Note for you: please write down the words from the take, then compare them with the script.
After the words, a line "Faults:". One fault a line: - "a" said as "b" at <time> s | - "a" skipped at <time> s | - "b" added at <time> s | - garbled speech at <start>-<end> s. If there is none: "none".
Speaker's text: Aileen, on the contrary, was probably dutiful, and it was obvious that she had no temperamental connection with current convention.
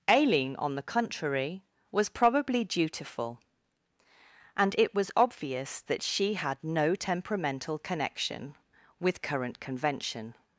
Aileen, on the contrary, was probably dutiful, and it was obvious that she had no temperamental connection with current convention.
Faults:
none